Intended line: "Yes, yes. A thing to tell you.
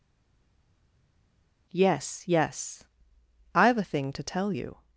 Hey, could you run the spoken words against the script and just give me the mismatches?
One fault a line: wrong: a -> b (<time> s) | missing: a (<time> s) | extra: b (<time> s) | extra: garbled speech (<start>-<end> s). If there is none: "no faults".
extra: I've (3.5 s)